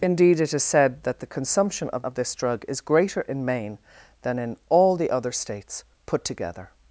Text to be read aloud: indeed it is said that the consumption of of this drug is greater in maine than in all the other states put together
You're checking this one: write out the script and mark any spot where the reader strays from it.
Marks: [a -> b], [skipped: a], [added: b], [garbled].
indeed it is said that the consumption of of this drug is greater in maine than in all the other states put together